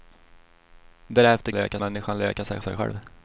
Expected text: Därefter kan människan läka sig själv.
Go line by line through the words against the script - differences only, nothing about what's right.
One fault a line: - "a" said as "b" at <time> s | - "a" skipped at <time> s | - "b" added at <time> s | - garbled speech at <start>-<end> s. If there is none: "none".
- "kan" said as "läka" at 1.5 s
- "sig" added at 2.6 s